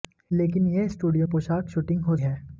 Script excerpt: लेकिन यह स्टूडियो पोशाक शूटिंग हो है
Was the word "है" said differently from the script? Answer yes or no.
no